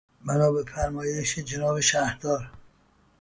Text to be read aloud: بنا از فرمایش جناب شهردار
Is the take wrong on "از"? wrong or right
wrong